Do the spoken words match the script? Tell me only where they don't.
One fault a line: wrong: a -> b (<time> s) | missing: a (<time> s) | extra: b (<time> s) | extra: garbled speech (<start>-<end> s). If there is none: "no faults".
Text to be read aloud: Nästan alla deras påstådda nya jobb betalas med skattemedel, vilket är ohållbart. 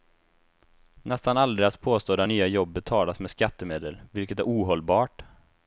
no faults